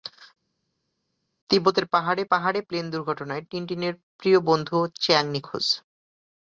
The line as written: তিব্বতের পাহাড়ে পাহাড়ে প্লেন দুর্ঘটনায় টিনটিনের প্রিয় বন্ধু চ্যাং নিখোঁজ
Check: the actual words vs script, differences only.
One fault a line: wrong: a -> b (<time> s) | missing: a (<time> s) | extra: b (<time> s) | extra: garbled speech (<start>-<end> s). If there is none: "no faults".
no faults